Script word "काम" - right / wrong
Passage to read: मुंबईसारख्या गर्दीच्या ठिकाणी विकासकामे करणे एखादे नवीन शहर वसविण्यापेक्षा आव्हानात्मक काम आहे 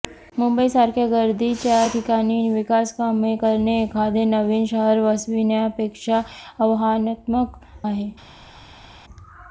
wrong